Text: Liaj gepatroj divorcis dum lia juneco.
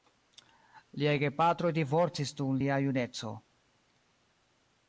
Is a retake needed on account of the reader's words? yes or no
no